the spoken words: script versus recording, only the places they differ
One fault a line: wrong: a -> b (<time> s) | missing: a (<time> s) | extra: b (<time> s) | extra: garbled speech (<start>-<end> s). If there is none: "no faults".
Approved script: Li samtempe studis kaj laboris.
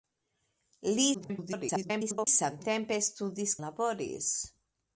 extra: garbled speech (1.1-2.3 s)
missing: kaj (3.6 s)